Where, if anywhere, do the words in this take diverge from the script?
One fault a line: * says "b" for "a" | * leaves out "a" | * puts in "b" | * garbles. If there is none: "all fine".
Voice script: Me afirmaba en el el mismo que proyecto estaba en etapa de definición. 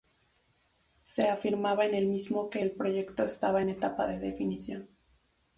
* says "Se" for "Me"
* leaves out "el"
* puts in "el"